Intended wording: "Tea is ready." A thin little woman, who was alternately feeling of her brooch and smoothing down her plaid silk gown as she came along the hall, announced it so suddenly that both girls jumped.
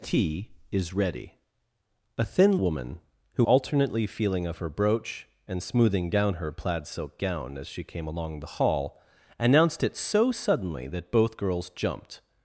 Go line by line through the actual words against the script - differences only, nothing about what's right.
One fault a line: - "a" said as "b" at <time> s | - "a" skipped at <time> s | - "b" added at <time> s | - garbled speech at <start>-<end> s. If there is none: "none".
- "little" skipped at 2.6 s
- "was" skipped at 3.4 s